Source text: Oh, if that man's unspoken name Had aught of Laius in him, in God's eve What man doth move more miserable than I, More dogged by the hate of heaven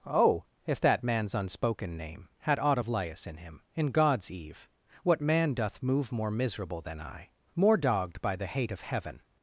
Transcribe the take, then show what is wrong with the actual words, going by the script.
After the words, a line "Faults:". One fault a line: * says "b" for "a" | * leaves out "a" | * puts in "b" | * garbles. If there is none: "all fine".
Oh, if that man's unspoken name Had aught of Laius in him, in God's eve What man doth move more miserable than I, More dogged by the hate of heaven
Faults:
all fine